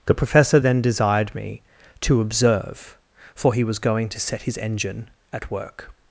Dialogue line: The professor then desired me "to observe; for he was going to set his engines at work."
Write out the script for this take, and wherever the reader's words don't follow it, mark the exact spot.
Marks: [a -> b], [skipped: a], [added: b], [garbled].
The professor then desired me "to observe; for he was going to set his [engines -> engine] at work."